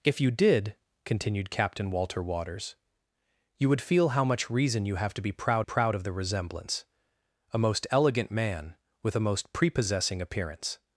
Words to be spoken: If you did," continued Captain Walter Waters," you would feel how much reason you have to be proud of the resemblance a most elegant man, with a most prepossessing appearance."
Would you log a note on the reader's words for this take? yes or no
yes